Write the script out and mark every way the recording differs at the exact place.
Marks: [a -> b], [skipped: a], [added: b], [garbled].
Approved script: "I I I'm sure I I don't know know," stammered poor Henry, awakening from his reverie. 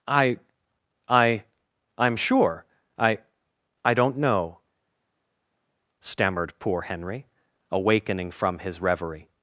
"I I I'm sure I I don't know [skipped: know,"] stammered poor Henry, awakening from his reverie.